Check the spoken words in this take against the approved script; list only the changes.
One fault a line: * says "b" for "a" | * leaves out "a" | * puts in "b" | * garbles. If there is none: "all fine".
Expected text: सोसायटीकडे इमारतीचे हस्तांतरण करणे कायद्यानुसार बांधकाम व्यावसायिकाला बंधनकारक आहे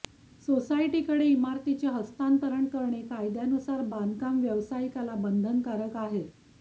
all fine